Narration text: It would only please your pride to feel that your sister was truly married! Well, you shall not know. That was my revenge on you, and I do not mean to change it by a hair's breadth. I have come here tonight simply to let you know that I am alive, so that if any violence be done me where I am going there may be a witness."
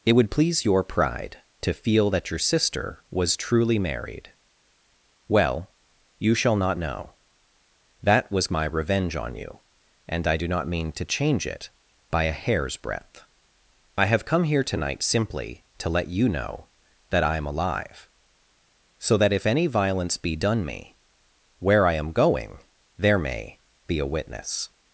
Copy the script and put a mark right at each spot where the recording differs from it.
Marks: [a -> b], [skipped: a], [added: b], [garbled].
It would [skipped: only] please your pride to feel that your sister was truly married! Well, you shall not know. That was my revenge on you, and I do not mean to change it by a hair's breadth. I have come here tonight simply to let you know that I am alive, so that if any violence be done me where I am going there may be a witness."